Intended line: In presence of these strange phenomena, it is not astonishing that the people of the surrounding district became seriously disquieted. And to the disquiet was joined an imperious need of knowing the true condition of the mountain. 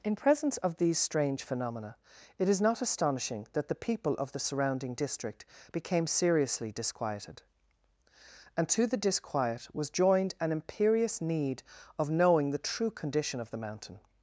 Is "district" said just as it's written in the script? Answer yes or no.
yes